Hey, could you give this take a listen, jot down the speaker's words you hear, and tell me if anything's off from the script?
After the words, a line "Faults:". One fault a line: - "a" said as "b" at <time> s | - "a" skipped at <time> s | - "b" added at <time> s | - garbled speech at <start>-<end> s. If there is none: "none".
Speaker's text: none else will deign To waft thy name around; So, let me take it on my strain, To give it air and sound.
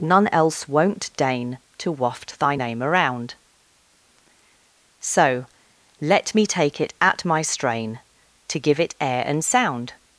none else won't deign To waft thy name around; So, let me take it at my strain, To give it air and sound.
Faults:
- "will" said as "won't" at 0.7 s
- "on" said as "at" at 7.0 s